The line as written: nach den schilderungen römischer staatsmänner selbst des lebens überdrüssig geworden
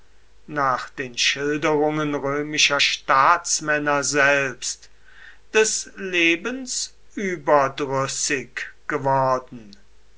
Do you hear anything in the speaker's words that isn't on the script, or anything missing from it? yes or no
no